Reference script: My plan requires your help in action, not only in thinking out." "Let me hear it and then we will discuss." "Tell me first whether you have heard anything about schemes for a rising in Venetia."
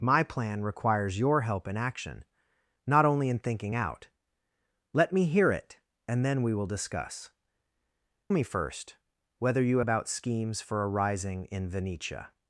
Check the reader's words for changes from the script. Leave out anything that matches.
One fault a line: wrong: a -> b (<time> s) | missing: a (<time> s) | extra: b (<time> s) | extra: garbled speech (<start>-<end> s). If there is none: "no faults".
missing: Tell (7.3 s)
missing: have heard anything (9.8 s)